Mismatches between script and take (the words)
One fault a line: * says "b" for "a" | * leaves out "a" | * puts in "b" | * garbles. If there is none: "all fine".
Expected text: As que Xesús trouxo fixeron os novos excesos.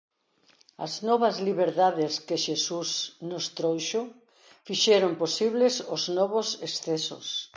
* puts in "novas liberdades"
* puts in "nos"
* puts in "posibles"